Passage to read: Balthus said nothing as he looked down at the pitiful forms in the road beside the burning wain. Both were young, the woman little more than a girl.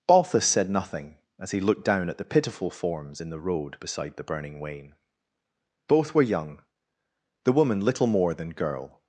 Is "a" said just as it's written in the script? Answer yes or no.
no